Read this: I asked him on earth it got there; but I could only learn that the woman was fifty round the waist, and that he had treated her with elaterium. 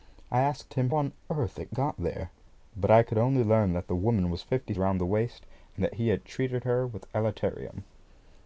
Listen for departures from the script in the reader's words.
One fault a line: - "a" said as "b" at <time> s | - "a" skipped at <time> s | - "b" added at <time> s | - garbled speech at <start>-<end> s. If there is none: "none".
none